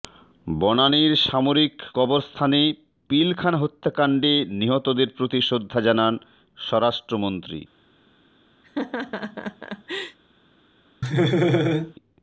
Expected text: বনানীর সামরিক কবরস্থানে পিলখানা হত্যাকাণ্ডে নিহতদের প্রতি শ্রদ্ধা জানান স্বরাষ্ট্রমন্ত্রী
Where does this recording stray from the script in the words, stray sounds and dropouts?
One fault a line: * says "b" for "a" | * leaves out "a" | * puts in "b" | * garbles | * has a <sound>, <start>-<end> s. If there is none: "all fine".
* has a laugh, 8.6-10.2 s
* has a laugh, 11.0-11.9 s